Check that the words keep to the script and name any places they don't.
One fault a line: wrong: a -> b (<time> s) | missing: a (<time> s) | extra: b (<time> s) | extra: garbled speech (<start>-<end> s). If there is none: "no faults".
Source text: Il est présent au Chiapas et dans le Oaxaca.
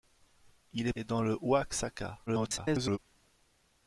missing: présent au Chiapas (0.9 s)
extra: garbled speech (2.3-3.0 s)